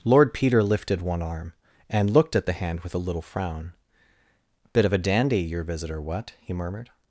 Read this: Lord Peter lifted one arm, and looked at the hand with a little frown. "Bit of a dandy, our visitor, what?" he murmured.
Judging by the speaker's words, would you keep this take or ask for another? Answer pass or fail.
fail